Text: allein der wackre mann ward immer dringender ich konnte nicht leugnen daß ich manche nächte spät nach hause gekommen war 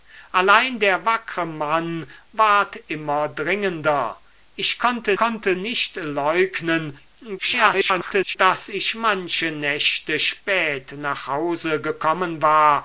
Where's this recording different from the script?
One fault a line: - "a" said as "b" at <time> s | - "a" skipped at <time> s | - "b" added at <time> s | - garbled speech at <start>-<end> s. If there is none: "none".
- "konnte" added at 5.2 s
- garbled speech at 7.4-8.4 s